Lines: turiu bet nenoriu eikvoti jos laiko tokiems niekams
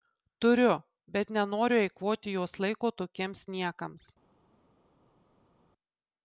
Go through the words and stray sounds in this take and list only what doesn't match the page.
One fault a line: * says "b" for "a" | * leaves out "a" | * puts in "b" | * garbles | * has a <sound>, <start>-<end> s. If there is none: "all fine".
all fine